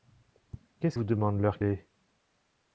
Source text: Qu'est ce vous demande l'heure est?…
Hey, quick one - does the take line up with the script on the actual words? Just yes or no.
yes